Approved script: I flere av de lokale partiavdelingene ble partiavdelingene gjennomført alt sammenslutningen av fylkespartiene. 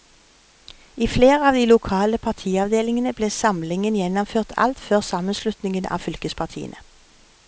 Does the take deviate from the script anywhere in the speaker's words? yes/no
yes